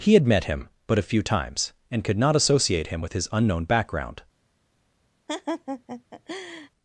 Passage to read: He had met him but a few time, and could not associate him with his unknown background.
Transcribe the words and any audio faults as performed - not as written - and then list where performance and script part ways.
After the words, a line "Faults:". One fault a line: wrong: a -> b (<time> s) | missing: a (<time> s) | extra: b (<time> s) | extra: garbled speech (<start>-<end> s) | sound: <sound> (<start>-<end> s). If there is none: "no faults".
He had met him but a few times, and could not associate him with his unknown background.
Faults:
wrong: time -> times (1.2 s)
sound: laugh (5.3-6.7 s)